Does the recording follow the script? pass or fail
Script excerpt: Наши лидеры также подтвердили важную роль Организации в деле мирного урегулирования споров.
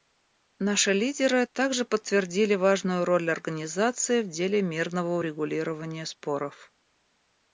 pass